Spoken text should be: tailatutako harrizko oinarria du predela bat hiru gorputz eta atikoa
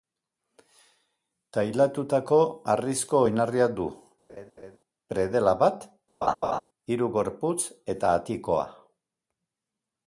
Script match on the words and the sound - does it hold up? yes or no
no